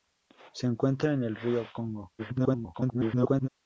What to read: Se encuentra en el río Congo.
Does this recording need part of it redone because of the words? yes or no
yes